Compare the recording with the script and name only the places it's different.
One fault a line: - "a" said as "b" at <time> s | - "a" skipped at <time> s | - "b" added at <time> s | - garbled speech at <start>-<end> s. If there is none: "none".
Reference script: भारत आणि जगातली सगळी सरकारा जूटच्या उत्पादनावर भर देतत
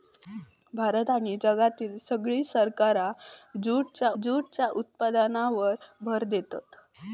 - "जूटच्या" added at 4.2 s